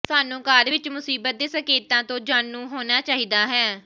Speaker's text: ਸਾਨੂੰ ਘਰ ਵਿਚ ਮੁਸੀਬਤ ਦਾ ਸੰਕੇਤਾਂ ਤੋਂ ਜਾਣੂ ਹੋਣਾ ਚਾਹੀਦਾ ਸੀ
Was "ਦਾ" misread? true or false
true